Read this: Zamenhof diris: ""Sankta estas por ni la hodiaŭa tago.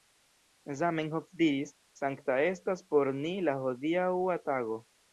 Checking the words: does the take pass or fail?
pass